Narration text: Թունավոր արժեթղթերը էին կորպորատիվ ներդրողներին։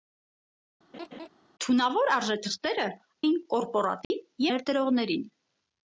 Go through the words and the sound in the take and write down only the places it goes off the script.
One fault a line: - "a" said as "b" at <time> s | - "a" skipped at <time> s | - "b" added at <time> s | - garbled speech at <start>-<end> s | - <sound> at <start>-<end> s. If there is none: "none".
- laugh at 0.9-1.3 s
- dropout at 4.0-4.1 s